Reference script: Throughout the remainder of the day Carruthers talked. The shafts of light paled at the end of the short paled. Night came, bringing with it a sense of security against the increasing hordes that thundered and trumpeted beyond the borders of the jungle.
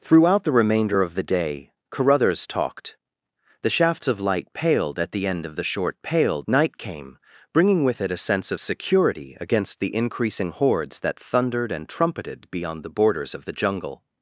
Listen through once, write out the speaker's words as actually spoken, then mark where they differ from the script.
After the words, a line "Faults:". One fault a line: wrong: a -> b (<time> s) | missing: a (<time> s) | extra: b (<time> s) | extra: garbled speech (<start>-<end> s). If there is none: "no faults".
Throughout the remainder of the day Carruthers talked. The shafts of light paled at the end of the short paled. Night came, bringing with it a sense of security against the increasing hordes that thundered and trumpeted beyond the borders of the jungle.
Faults:
no faults